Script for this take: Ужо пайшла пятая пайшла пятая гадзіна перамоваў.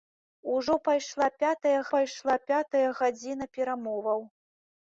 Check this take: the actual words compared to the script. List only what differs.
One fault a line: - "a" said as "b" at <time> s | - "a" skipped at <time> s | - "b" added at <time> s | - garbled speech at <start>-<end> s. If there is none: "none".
none